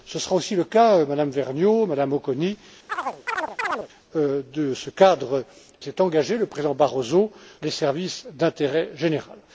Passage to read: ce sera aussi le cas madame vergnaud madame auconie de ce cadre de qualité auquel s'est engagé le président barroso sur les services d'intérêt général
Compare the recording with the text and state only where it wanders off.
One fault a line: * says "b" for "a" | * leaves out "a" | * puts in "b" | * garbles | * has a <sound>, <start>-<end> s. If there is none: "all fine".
* has a chirp, 2.9-3.9 s
* leaves out "de qualité auquel"
* leaves out "sur"